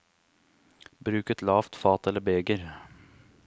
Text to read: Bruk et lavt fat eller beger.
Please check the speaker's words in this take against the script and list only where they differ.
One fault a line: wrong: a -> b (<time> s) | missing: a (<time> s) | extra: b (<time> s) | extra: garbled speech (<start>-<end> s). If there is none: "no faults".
no faults